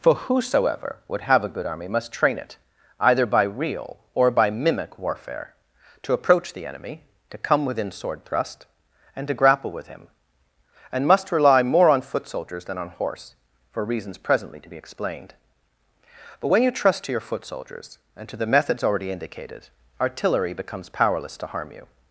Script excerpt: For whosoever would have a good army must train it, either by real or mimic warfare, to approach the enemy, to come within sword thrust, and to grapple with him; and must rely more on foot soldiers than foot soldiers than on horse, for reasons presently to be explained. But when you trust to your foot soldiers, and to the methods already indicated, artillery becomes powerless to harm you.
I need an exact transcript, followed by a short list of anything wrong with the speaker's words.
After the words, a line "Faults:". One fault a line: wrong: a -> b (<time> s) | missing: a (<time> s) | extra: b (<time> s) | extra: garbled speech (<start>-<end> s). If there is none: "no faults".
For whosoever would have a good army must train it, either by real or by mimic warfare, to approach the enemy, to come within sword thrust, and to grapple with him; and must rely more on foot soldiers than on horse, for reasons presently to be explained. But when you trust to your foot soldiers, and to the methods already indicated, artillery becomes powerless to harm you.
Faults:
extra: by (4.3 s)
missing: foot soldiers than (12.8 s)